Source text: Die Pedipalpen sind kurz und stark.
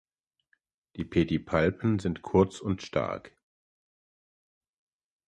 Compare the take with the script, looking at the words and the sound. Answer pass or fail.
pass